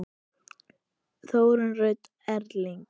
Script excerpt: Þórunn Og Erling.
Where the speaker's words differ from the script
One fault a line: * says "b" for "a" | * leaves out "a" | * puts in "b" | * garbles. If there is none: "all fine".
* puts in "Rut"